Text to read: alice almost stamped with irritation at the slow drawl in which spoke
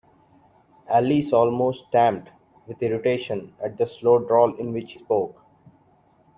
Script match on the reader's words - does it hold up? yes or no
yes